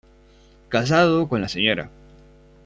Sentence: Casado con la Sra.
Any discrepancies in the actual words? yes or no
no